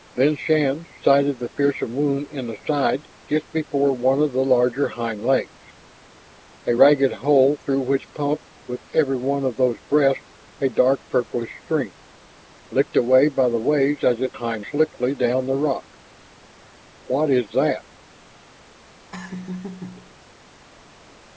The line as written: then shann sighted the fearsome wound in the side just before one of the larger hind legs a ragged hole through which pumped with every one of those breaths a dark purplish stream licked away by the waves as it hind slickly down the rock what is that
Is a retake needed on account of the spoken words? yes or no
no